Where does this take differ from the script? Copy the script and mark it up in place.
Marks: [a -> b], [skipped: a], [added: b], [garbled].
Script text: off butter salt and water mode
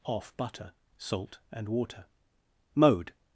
off butter salt and water mode